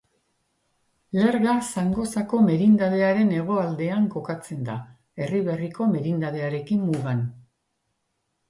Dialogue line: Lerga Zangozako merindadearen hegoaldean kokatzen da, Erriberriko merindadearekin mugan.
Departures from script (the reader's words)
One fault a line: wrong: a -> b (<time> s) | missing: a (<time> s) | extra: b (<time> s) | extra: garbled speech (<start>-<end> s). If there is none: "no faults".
no faults